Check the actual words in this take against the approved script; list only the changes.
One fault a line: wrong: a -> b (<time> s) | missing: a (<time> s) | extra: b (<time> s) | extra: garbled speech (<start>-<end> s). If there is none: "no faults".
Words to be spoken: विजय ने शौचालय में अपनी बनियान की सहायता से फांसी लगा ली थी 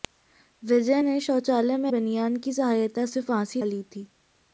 missing: अपनी (1.9 s)
missing: लगा (3.6 s)